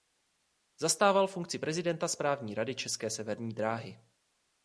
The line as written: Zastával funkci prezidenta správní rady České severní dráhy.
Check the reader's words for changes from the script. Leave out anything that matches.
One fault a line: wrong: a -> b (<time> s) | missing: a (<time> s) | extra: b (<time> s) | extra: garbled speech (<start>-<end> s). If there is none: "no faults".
no faults